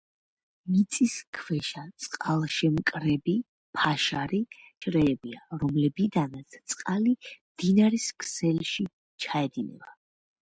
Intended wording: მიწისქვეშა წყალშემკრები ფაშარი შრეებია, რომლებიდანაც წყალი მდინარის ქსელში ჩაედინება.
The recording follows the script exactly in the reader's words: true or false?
true